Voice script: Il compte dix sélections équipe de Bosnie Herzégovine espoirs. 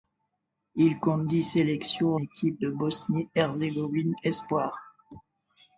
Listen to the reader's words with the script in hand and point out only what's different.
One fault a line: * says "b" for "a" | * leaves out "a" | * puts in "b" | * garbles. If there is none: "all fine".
all fine